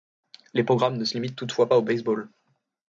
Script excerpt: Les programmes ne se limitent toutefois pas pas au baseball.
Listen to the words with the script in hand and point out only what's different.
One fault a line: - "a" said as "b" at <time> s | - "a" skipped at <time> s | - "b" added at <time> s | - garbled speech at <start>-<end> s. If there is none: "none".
- "pas" skipped at 1.8 s